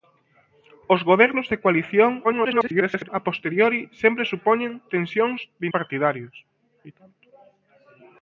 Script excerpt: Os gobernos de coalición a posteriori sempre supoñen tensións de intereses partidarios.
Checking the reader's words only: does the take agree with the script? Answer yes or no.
no